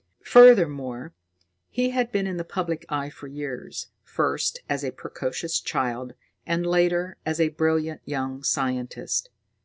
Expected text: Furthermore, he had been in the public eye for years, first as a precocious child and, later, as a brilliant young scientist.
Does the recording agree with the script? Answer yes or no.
yes